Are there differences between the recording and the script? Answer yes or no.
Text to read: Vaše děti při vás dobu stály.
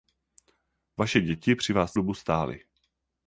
no